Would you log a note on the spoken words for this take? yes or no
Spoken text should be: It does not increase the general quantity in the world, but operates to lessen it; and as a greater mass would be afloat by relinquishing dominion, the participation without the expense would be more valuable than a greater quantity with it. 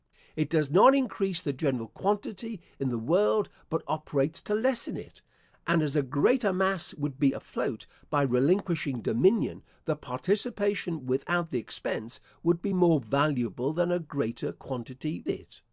yes